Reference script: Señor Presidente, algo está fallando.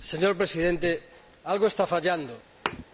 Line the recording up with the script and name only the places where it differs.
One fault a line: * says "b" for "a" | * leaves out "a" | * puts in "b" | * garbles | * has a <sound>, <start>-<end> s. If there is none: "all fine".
* has a thud, 2.7-2.8 s